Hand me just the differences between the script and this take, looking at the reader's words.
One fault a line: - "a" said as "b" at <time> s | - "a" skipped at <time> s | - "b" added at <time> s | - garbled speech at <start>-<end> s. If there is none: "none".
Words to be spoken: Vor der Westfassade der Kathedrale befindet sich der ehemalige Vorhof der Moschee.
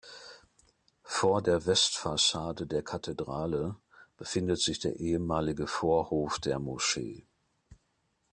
none